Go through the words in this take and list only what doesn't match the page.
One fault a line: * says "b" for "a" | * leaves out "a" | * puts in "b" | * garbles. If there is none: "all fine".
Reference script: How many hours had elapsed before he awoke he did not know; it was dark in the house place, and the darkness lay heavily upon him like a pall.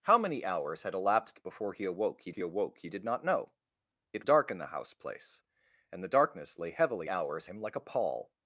* puts in "he awoke he"
* leaves out "was"
* says "hours" for "upon"